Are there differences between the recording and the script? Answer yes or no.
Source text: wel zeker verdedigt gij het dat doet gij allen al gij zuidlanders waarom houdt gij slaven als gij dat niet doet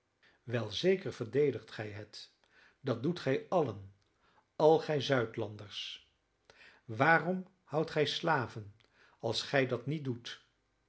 no